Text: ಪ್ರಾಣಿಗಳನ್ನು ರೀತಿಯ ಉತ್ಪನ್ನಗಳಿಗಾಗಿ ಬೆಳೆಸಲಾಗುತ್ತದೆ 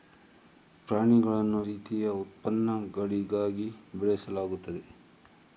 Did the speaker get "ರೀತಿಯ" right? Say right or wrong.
right